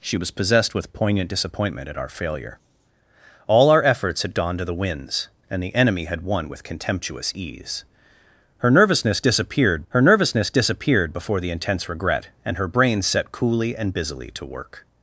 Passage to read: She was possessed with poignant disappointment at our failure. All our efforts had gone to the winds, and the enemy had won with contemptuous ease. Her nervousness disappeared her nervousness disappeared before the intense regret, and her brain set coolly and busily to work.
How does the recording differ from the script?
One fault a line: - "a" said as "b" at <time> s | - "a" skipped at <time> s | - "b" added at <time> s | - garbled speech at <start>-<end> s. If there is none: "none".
none